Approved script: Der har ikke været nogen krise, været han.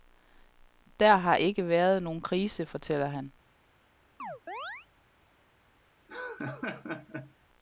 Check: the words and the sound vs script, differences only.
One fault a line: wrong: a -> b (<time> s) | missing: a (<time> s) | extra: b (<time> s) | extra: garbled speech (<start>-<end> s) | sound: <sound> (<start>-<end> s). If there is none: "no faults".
wrong: været -> fortæller (2.6 s)
sound: chirp (4.2-4.9 s)
sound: laugh (6.1-7.3 s)